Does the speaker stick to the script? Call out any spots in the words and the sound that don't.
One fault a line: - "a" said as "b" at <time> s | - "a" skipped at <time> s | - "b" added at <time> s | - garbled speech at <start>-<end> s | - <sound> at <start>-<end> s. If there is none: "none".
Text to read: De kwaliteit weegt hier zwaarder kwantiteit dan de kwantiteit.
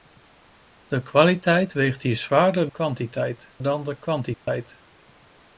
- dropout at 4.3-4.5 s